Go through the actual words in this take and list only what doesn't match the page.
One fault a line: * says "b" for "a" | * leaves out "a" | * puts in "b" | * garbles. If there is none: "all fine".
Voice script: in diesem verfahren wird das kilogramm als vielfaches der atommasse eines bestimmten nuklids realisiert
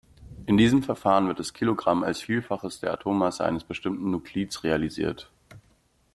all fine